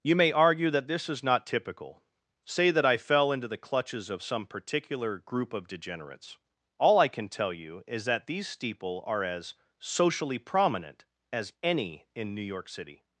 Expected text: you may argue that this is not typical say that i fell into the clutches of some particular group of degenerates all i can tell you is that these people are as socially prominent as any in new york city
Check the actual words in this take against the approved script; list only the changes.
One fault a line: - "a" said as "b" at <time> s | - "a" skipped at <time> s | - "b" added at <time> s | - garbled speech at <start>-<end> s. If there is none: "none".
- "people" said as "steeple" at 8.5 s